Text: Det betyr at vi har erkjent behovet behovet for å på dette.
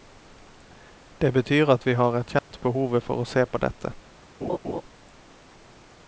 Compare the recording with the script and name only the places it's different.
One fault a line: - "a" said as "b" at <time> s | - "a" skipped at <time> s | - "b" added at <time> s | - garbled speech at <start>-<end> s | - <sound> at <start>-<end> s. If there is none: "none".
- dropout at 2.4-2.5 s
- "behovet" skipped at 3.0 s
- "se" added at 3.3 s
- laugh at 4.4-4.8 s